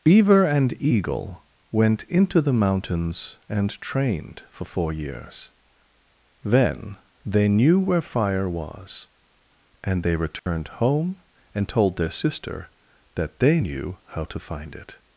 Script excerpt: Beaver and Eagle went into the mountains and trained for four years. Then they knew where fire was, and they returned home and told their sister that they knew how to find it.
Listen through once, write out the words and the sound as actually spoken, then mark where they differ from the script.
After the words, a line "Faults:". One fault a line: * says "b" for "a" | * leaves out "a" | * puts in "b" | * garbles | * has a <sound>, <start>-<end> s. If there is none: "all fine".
Beaver and Eagle went into the mountains and trained for four years. Then they knew where fire was, and they returned home and told their sister that they knew how to find it.
Faults:
* has a dropout, 10.4-10.5 s